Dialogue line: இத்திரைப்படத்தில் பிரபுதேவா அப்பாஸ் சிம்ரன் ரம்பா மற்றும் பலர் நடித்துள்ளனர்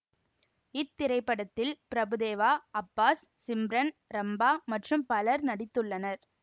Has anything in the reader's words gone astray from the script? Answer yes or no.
no